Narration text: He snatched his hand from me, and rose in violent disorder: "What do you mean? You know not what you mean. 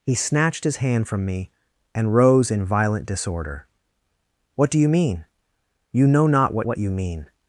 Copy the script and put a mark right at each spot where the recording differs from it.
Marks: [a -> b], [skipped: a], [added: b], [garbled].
He snatched his hand from me, and rose in violent disorder: "What do you mean? You know not what [added: what] you mean.